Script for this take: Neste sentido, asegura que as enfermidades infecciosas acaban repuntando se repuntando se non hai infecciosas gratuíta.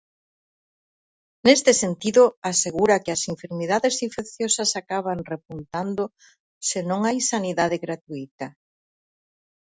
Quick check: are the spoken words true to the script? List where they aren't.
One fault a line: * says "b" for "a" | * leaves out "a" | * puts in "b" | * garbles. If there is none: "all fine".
* leaves out "repuntando se"
* says "sanidade" for "infecciosas"